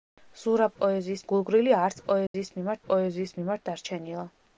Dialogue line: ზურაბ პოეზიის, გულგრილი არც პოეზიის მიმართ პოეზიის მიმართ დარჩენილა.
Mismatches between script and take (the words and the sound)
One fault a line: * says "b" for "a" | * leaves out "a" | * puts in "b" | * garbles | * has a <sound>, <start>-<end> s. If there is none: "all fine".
* has a dropout, 2.3-2.3 s